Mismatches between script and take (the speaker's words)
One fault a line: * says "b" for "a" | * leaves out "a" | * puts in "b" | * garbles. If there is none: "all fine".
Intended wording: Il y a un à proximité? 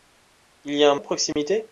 all fine